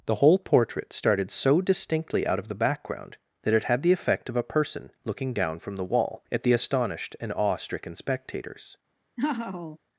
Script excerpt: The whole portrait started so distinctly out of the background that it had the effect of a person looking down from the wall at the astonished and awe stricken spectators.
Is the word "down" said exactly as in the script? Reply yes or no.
yes